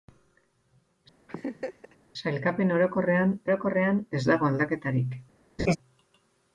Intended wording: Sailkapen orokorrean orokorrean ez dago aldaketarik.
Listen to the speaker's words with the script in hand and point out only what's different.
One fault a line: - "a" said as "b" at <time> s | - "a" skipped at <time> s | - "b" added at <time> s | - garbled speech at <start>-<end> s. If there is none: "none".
none